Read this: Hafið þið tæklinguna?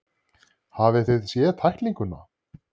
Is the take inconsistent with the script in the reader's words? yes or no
yes